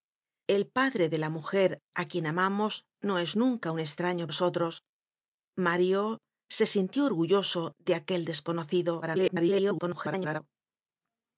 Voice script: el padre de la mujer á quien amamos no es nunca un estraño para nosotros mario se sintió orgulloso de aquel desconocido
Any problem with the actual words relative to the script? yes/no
yes